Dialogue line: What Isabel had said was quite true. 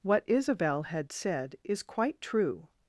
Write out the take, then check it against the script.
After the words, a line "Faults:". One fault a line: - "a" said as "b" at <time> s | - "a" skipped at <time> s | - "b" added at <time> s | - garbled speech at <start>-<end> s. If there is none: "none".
What Isabel had said is quite true.
Faults:
- "was" said as "is" at 1.6 s